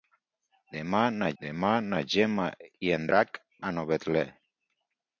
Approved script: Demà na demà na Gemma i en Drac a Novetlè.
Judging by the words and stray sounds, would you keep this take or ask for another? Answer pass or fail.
pass